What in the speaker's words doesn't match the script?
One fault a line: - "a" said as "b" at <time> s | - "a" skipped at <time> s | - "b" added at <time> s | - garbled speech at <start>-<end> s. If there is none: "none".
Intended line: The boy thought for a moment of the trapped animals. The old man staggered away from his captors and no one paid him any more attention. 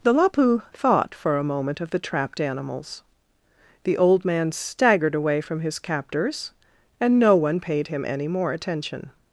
- "boy" said as "lapu" at 0.1 s